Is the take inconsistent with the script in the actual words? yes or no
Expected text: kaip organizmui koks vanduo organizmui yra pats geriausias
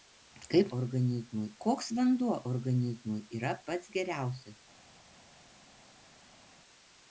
no